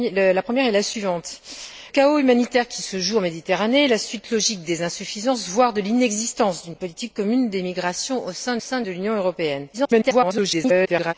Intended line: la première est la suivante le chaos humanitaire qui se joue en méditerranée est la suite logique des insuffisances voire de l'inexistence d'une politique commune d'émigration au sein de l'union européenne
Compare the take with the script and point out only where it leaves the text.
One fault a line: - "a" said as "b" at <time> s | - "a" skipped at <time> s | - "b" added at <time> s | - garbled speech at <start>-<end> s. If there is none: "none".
- "le" skipped at 1.4 s
- "sein" added at 8.6 s
- garbled speech at 9.7-11.1 s